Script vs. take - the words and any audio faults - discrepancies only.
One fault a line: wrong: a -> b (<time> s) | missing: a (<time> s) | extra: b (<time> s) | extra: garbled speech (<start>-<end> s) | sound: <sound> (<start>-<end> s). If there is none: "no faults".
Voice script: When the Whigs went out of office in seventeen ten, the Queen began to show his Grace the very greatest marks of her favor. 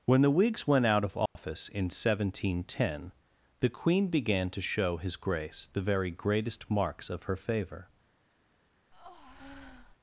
sound: dropout (1.3-1.4 s)
sound: breath (8.9-10.0 s)